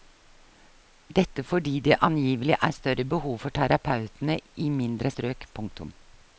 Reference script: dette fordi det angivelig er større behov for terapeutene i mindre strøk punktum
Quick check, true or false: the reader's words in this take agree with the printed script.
true